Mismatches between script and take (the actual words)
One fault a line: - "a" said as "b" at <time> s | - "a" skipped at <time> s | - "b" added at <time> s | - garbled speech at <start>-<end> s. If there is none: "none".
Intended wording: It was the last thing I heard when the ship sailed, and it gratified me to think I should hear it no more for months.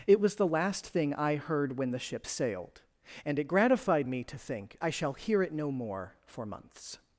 - "should" said as "shall" at 4.9 s